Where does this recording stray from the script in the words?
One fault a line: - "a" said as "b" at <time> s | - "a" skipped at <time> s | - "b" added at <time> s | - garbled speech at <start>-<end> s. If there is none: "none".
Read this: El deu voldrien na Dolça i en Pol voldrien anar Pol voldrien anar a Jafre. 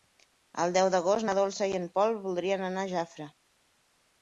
- "voldrien" said as "d'agost" at 0.9 s
- "Pol voldrien anar" skipped at 2.9 s